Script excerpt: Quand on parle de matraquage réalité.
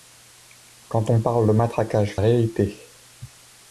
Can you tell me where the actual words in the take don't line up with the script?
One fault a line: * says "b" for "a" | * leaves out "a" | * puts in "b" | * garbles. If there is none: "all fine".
all fine